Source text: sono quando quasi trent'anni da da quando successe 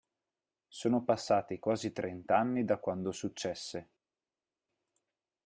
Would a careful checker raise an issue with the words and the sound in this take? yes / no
yes